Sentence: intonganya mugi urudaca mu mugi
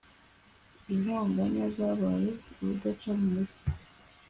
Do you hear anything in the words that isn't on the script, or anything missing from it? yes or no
yes